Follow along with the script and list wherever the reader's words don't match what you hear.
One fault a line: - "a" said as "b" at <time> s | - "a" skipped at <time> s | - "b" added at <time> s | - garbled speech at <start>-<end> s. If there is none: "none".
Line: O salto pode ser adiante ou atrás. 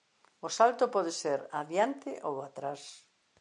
none